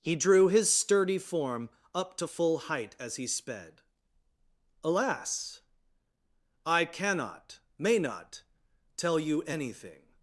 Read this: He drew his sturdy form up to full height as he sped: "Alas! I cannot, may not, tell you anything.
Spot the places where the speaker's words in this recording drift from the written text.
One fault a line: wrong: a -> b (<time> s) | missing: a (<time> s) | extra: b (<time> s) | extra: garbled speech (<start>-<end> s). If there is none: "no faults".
no faults